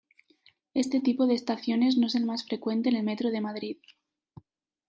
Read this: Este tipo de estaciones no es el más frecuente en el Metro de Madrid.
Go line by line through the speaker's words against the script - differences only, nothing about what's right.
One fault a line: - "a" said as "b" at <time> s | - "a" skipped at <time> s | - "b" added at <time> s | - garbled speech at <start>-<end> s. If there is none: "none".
none